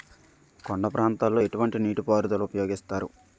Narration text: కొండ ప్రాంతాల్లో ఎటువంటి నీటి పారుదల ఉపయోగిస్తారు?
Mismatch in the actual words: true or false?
false